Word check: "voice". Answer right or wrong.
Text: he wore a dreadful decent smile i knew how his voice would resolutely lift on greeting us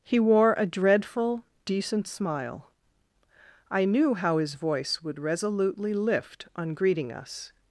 right